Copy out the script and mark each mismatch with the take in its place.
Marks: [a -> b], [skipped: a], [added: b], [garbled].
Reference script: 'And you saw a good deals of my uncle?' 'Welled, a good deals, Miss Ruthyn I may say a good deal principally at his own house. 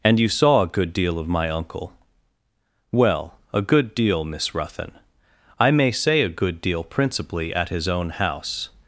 'And you saw a good [deals -> deal] of my uncle?' ['Welled, -> Well] a good [deals, -> deal] Miss Ruthyn I may say a good deal principally at his own house.